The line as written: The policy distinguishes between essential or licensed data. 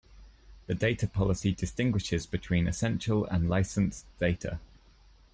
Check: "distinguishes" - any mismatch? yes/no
no